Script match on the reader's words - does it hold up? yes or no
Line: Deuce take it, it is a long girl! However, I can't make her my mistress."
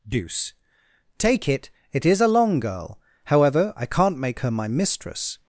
yes